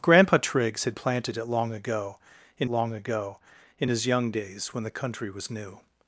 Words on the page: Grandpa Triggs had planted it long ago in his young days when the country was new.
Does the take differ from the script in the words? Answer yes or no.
yes